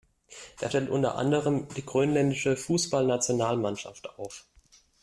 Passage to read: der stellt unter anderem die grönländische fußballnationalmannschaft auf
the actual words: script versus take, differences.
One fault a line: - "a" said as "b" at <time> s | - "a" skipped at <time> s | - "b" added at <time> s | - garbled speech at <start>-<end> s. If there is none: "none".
none